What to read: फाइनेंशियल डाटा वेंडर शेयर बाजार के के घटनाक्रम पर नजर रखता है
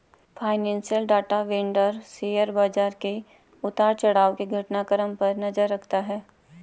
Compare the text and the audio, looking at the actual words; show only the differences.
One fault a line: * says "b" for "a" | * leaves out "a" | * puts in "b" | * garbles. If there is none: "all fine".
* puts in "उतार चढ़ाव"